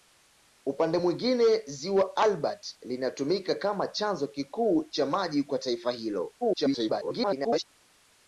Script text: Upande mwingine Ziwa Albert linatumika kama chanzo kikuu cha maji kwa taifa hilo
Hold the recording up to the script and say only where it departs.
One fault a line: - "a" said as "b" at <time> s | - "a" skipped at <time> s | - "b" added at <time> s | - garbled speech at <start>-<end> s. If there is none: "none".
- garbled speech at 6.4-7.7 s